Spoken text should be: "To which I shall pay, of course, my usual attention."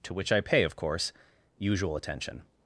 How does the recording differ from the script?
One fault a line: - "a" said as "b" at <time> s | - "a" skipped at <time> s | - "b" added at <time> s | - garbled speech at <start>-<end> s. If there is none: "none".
- "shall" skipped at 0.4 s
- "my" skipped at 1.1 s